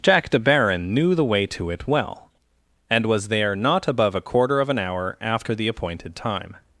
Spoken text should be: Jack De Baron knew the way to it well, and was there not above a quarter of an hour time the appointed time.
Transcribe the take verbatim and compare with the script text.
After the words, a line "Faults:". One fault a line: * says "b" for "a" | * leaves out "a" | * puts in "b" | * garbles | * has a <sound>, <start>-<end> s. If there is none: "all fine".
Jack De Baron knew the way to it well, and was there not above a quarter of an hour after the appointed time.
Faults:
* says "after" for "time"